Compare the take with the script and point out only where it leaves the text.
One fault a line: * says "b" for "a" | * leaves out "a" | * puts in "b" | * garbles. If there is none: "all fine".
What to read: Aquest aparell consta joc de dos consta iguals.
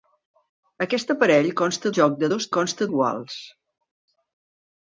all fine